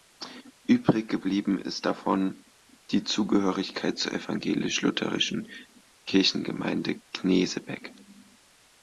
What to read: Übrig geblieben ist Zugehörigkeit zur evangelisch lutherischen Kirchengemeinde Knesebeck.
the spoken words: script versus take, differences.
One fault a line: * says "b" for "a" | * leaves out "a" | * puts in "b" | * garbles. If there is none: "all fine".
* puts in "davon die"